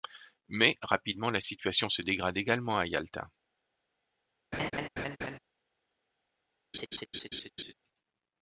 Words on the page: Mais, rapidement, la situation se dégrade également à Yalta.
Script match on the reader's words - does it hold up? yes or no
yes